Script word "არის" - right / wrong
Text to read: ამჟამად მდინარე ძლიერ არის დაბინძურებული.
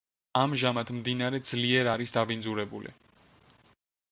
right